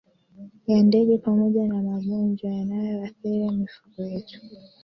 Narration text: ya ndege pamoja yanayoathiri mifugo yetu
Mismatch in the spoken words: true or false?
true